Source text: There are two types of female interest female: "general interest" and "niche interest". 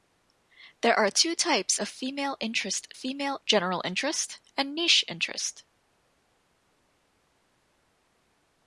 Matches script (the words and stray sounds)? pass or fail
pass